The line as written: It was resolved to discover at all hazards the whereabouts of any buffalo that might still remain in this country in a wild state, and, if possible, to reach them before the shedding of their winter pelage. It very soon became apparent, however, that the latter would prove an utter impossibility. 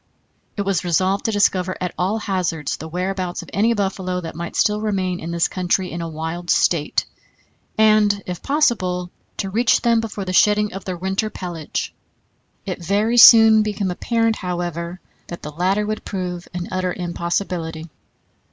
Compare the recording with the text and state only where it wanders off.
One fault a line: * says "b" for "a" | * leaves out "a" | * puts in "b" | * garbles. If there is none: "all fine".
all fine